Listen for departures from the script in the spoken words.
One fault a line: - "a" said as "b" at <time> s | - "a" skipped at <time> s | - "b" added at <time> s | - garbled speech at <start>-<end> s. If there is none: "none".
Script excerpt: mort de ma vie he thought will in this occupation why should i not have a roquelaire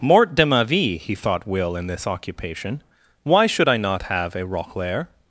none